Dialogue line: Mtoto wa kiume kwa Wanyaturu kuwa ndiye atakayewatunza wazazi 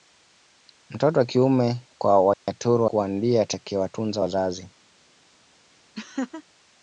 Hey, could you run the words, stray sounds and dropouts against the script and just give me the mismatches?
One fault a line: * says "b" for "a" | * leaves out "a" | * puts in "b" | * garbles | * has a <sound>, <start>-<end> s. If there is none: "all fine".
* has a dropout, 2.3-2.5 s
* has a laugh, 6.0-6.4 s